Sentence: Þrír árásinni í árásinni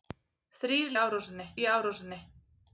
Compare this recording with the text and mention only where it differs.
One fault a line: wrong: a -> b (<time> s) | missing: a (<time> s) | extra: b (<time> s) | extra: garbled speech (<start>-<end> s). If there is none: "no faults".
no faults